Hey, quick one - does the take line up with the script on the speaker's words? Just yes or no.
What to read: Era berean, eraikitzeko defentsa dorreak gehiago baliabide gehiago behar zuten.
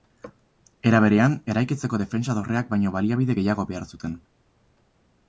no